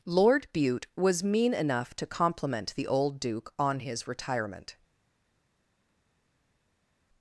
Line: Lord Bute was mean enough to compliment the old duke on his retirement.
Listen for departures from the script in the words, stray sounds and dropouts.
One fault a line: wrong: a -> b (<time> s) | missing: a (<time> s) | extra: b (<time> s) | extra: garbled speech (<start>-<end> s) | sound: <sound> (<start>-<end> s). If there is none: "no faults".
no faults